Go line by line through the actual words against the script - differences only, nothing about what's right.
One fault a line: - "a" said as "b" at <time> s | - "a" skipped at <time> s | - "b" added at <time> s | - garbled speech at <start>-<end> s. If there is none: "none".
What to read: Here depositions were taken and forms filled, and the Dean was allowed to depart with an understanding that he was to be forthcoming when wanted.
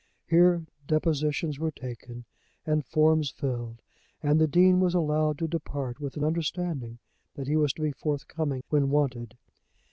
none